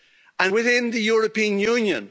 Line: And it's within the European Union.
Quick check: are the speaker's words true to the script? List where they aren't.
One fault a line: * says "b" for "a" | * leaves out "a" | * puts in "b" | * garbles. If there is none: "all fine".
* leaves out "it's"